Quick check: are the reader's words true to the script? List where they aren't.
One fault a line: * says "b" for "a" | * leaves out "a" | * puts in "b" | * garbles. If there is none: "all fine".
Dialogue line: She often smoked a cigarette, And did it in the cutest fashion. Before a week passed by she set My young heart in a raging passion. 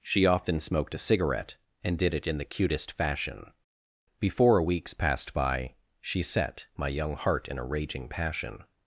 * says "weeks" for "week"